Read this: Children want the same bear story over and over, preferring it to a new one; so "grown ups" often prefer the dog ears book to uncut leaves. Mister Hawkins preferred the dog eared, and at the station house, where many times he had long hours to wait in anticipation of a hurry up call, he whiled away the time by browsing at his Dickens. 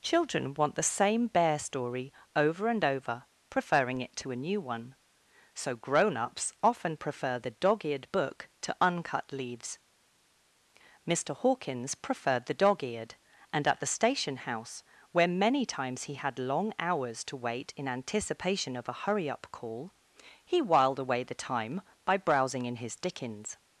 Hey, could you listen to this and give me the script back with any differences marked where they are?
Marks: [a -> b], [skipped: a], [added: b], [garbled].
Children want the same bear story over and over, preferring it to a new one; so "grown ups" often prefer the dog [ears -> eared] book to uncut leaves. Mister Hawkins preferred the dog eared, and at the station house, where many times he had long hours to wait in anticipation of a hurry up call, he whiled away the time by browsing [at -> in] his Dickens.